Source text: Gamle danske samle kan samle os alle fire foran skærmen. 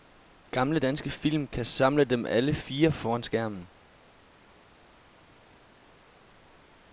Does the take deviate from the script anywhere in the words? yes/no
yes